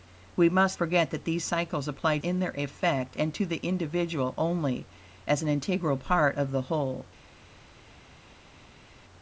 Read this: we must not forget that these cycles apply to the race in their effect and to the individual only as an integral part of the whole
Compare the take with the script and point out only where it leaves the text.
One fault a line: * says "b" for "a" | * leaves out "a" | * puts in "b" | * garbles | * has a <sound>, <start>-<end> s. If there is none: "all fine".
* leaves out "not"
* leaves out "to the race"